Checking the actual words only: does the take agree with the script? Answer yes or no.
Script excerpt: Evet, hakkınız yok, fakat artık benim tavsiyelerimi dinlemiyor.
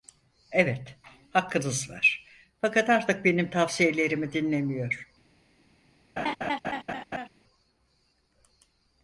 no